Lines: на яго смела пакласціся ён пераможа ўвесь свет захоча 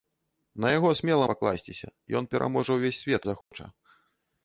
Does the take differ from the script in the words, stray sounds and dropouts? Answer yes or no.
yes